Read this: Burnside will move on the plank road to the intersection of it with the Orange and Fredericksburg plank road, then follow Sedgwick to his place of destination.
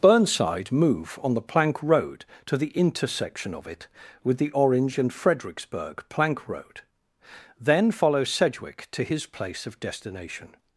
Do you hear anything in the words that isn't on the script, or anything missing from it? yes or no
yes